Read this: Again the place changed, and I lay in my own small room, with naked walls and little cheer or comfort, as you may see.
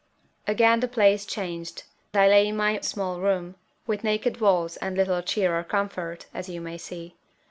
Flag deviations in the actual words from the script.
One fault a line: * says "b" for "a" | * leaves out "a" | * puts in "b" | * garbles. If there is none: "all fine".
* leaves out "and"
* leaves out "own"